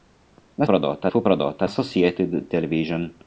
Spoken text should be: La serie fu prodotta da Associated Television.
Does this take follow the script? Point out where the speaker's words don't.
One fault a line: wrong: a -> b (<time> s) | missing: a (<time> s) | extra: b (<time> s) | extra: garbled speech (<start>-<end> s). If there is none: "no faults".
wrong: serie -> prodotta (0.6 s)
missing: da (1.7 s)